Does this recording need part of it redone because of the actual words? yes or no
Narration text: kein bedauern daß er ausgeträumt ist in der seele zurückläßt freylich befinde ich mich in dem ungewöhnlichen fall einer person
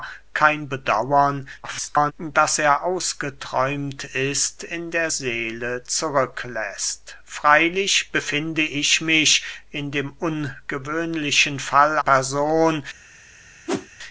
yes